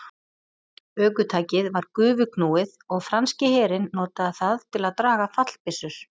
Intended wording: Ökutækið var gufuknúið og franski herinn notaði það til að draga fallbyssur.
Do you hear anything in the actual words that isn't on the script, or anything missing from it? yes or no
no